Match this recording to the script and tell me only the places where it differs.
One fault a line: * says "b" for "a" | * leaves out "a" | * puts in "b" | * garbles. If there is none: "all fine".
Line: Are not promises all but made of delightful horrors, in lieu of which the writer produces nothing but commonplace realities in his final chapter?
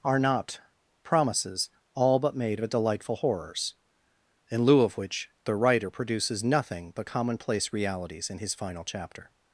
all fine